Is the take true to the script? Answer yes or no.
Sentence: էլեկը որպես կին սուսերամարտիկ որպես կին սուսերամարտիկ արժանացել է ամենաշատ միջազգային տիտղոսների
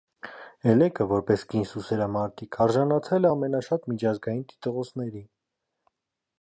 no